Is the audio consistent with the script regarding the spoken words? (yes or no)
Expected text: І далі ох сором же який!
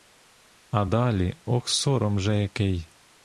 no